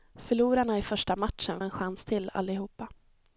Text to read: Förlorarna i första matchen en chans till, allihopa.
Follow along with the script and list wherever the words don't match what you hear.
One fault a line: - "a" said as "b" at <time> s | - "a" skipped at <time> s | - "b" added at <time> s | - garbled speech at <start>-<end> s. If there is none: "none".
none